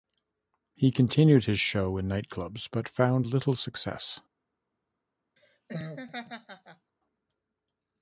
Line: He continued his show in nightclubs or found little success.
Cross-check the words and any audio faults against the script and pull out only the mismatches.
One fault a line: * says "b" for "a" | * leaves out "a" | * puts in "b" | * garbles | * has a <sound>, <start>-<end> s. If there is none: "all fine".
* says "but" for "or"
* has a laugh, 5.4-6.9 s